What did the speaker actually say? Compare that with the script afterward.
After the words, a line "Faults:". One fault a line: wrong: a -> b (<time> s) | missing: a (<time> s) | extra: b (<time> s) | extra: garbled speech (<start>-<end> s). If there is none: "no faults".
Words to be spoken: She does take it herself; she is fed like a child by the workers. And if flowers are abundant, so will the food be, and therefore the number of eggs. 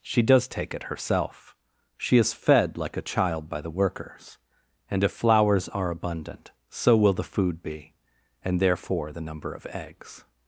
She does take it herself; she is fed like a child by the workers. And if flowers are abundant, so will the food be, and therefore the number of eggs.
Faults:
no faults